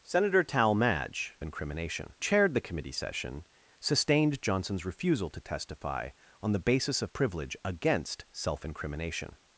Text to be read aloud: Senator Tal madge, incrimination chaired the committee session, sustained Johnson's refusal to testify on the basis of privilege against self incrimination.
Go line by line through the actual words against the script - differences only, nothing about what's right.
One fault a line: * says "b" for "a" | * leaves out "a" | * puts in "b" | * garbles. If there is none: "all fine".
all fine